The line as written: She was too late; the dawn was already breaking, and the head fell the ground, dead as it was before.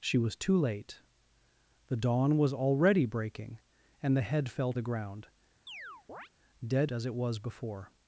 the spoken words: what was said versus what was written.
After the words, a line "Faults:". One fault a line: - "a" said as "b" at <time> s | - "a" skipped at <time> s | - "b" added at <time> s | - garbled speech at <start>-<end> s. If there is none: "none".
She was too late; the dawn was already breaking, and the head fell the ground, dead as it was before.
Faults:
none